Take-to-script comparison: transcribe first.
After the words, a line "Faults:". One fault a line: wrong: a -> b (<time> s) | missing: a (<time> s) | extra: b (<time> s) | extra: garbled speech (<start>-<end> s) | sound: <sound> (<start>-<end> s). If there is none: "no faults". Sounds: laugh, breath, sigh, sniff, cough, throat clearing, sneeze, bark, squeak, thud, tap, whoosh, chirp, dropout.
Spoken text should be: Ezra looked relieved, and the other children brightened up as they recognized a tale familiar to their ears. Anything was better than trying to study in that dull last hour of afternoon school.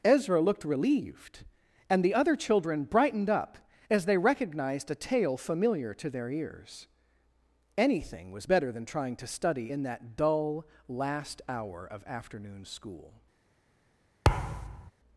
Ezra looked relieved, and the other children brightened up as they recognized a tale familiar to their ears. Anything was better than trying to study in that dull last hour of afternoon school.
Faults:
sound: thud (14.2-14.9 s)